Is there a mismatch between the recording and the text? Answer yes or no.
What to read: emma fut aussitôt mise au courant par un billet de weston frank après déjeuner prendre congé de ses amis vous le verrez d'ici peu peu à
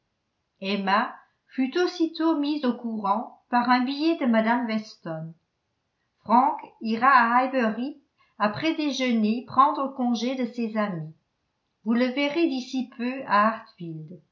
yes